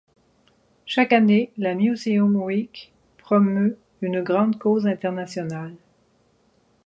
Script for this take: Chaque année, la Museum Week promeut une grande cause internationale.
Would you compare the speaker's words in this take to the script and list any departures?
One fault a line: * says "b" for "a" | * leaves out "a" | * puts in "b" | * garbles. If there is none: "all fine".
all fine